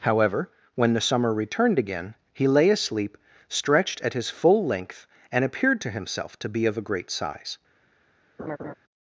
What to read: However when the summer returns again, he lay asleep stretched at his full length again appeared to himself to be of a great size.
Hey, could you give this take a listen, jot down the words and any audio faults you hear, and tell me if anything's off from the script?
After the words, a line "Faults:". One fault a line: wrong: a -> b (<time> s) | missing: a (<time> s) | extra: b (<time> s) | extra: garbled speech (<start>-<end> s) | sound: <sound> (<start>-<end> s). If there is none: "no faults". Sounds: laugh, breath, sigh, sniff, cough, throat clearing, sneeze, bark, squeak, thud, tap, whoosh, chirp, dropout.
However when the summer returned again, he lay asleep stretched at his full length and appeared to himself to be of a great size.
Faults:
wrong: returns -> returned (1.3 s)
wrong: again -> and (5.3 s)
sound: laugh (8.4-8.7 s)